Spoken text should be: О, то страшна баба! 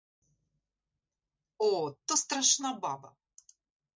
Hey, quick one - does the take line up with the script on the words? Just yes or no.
yes